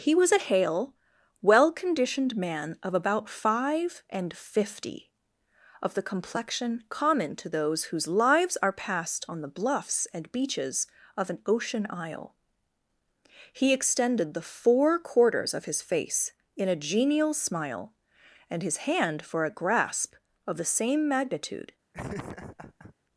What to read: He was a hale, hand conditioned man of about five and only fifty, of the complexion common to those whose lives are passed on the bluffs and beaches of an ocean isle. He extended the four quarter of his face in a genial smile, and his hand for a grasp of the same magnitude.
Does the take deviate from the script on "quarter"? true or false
true